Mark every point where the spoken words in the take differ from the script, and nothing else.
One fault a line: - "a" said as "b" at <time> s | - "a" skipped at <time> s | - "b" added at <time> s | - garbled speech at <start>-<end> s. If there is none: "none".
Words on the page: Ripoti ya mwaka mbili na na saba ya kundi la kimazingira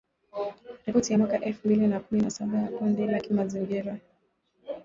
- "elfu" added at 1.4 s
- "kumi" added at 2.0 s